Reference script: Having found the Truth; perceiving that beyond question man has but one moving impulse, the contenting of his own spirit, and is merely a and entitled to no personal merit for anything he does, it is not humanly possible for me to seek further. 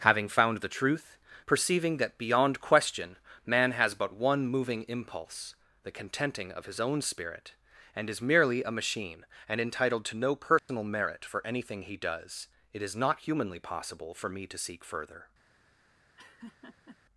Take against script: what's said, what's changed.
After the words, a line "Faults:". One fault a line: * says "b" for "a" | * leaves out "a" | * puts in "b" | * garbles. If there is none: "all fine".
Having found the Truth; perceiving that beyond question man has but one moving impulse, the contenting of his own spirit, and is merely a machine and entitled to no personal merit for anything he does, it is not humanly possible for me to seek further.
Faults:
* puts in "machine"